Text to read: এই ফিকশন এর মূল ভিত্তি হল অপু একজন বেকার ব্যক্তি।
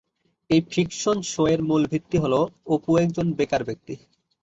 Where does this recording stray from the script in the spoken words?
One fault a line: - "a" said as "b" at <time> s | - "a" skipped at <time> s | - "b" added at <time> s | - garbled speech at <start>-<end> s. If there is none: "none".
- "শো" added at 1.3 s